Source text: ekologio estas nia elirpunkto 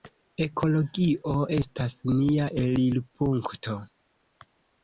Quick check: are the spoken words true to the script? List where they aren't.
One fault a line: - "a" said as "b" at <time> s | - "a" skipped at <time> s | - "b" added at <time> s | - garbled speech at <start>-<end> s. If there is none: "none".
none